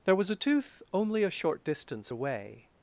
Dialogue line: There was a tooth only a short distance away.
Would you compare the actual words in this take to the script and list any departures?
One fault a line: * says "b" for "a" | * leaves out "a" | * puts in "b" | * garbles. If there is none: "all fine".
all fine